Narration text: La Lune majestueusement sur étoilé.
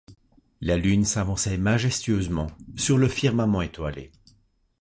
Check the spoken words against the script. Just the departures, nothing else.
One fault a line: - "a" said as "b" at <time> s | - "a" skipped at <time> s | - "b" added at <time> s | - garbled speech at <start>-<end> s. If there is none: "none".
- "s'avançait" added at 1.1 s
- "le firmament" added at 3.0 s